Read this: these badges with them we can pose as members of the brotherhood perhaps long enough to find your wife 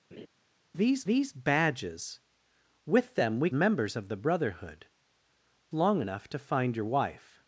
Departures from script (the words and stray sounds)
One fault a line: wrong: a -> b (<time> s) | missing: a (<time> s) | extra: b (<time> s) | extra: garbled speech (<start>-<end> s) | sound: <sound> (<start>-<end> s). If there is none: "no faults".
sound: laugh (0.1-0.3 s)
extra: these (1.0 s)
missing: can pose as (3.5 s)
missing: perhaps (4.8 s)